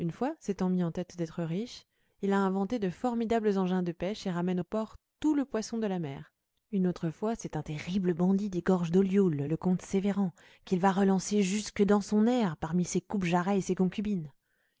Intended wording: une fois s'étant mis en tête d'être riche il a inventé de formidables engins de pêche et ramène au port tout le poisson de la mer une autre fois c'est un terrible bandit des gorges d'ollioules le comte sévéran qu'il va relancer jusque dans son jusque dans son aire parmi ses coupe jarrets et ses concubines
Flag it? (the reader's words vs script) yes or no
yes